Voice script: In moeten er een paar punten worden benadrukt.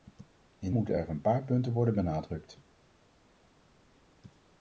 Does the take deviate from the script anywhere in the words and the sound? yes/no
no